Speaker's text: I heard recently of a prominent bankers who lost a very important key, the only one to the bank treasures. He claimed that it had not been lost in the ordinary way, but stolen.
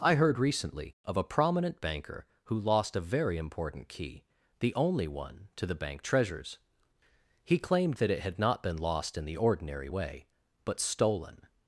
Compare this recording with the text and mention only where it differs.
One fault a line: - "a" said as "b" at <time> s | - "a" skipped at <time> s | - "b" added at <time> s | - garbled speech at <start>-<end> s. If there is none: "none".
- "bankers" said as "banker" at 1.8 s